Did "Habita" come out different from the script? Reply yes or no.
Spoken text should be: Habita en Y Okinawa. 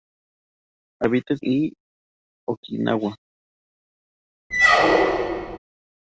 no